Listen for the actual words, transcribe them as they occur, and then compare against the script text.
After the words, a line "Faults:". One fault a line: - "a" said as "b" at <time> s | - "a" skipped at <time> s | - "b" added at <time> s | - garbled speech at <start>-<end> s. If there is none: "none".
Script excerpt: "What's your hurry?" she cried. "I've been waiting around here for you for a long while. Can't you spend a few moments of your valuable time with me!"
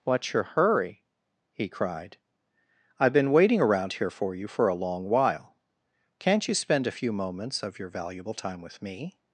"What's your hurry?" he cried. "I've been waiting around here for you for a long while. Can't you spend a few moments of your valuable time with me!"
Faults:
- "she" said as "he" at 1.5 s